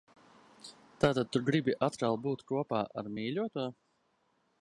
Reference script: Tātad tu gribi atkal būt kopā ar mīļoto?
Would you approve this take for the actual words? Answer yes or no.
yes